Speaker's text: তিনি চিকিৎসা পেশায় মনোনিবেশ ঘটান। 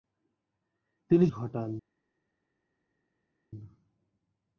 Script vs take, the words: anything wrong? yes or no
yes